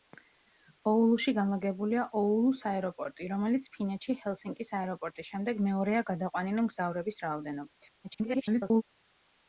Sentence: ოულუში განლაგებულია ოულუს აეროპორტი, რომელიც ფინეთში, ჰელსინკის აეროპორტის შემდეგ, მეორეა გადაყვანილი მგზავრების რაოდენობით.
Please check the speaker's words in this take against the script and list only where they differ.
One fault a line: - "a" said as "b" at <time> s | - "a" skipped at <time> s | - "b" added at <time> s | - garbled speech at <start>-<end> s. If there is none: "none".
- garbled speech at 8.0-8.8 s